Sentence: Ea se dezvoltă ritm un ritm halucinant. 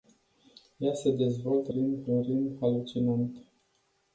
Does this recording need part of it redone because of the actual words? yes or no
no